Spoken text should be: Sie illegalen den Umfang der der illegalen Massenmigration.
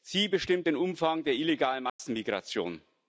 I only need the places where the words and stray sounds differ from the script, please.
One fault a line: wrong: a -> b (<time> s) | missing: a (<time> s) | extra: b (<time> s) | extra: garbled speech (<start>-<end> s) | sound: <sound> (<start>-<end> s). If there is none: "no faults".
wrong: illegalen -> bestimmt (0.3 s)
missing: der (1.3 s)
sound: dropout (1.9-2.0 s)